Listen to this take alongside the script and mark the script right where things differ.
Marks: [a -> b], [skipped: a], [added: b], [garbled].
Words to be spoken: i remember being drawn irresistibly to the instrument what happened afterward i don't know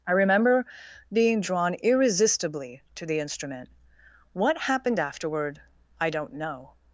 i remember being drawn irresistibly to the instrument what happened afterward i don't know